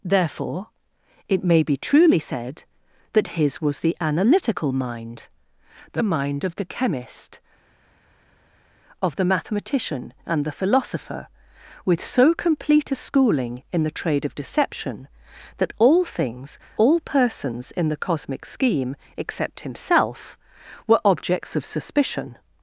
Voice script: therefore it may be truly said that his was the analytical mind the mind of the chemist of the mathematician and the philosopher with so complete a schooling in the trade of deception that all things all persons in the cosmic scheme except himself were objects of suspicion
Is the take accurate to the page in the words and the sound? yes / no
yes